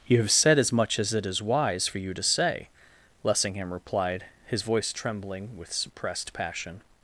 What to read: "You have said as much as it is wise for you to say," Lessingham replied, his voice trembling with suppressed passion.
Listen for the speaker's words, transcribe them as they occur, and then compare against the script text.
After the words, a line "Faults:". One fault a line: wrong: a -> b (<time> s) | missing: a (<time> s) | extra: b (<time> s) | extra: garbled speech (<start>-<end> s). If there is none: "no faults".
"You have said as much as it is wise for you to say," Lessingham replied, his voice trembling with suppressed passion.
Faults:
no faults